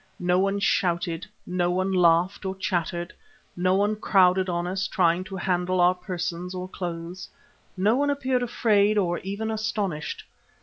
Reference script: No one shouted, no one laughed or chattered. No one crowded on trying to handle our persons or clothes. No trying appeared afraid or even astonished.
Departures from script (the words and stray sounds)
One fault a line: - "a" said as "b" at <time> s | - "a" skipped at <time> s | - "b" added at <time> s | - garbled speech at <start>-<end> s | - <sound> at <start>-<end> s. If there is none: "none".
- "us" added at 4.7 s
- "trying" said as "one" at 8.0 s